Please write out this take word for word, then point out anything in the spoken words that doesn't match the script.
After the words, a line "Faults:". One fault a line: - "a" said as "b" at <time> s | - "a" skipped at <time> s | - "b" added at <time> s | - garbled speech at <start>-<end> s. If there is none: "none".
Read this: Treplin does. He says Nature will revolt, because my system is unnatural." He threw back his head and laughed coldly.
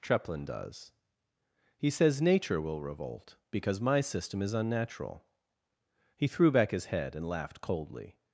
Treplin does. He says Nature will revolt, because my system is unnatural." He threw back his head and laughed coldly.
Faults:
none